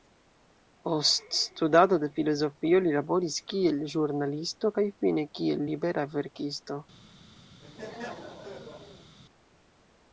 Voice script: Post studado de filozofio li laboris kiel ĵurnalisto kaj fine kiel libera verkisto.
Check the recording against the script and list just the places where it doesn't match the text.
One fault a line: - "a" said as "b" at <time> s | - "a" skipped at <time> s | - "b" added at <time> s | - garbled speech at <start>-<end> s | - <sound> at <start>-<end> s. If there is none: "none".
- laugh at 7.6-9.2 s